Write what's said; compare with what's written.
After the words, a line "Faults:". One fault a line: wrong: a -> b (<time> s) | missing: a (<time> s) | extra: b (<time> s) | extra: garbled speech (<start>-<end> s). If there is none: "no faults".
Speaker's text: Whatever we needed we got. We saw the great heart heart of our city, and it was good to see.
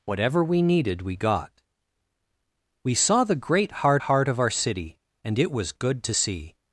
Whatever we needed we got. We saw the great heart heart of our city, and it was good to see.
Faults:
no faults